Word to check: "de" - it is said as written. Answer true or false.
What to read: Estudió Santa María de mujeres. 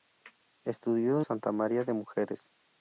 true